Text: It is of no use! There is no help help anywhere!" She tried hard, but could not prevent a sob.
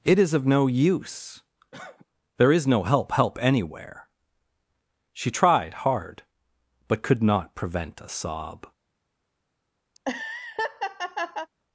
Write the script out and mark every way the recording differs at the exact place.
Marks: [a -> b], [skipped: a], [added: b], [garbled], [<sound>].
It is of no use! [cough] There is no help help anywhere!" She tried hard, but could not prevent a sob. [laugh]